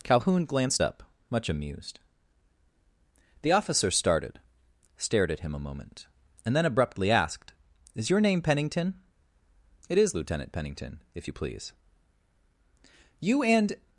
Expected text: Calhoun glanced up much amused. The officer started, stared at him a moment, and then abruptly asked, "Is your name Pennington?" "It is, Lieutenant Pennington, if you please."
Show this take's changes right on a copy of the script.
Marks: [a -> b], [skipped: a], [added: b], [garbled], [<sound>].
Calhoun glanced up much amused. The officer started, stared at him a moment, and then abruptly asked, "Is your name Pennington?" "It is, Lieutenant Pennington, if you please." [added: You and]